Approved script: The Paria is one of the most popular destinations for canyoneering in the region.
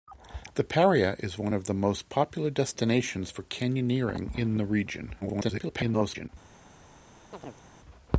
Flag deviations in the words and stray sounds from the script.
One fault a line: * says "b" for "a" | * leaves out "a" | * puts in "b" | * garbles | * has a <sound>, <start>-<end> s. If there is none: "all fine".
* garbles
* has a chirp, 7.3-7.6 s